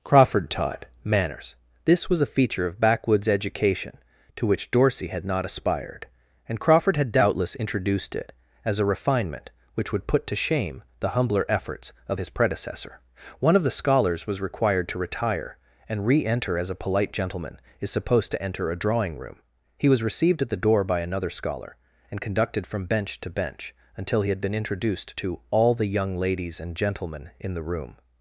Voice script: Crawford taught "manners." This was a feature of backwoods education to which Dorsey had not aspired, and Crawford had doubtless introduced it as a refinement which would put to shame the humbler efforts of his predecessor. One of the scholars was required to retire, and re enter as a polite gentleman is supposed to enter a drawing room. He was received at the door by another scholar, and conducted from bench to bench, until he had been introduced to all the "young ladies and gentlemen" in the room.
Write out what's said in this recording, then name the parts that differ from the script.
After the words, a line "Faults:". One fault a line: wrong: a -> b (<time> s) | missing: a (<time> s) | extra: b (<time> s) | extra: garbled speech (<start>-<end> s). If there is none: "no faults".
Crawford taught "manners." This was a feature of backwoods education to which Dorsey had not aspired, and Crawford had doubtless introduced it as a refinement which would put to shame the humbler efforts of his predecessor. One of the scholars was required to retire, and re enter as a polite gentleman is supposed to enter a drawing room. He was received at the door by another scholar, and conducted from bench to bench, until he had been introduced to all the "young ladies and gentlemen" in the room.
Faults:
no faults